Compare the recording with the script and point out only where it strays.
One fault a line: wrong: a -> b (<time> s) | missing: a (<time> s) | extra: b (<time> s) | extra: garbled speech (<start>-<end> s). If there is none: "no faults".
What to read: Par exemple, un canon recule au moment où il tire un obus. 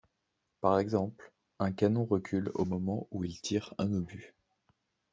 no faults